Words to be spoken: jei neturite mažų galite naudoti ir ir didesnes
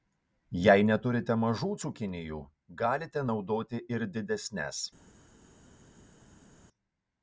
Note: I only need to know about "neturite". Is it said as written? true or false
true